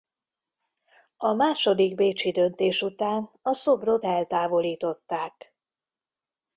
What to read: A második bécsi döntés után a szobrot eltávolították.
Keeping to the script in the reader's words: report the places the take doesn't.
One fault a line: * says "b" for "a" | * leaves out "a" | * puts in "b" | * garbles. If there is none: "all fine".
all fine